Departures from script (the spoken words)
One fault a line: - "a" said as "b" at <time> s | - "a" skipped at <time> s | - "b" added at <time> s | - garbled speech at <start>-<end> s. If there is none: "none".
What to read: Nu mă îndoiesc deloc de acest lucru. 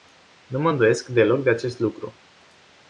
none